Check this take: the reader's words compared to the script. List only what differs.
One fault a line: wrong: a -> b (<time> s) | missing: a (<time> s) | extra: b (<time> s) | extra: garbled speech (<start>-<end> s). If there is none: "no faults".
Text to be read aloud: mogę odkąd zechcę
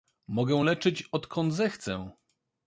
extra: leczyć (0.6 s)